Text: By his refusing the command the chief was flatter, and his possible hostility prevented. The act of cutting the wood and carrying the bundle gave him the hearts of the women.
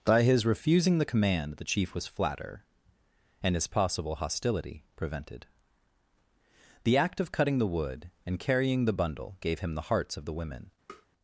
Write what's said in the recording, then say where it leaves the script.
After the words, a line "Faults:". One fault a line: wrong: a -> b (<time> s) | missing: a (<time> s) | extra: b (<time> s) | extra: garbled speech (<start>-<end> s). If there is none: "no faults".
By his refusing the command the chief was flatter, and his possible hostility prevented. The act of cutting the wood and carrying the bundle gave him the hearts of the women.
Faults:
no faults